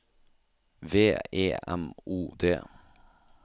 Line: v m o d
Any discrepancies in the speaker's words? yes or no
yes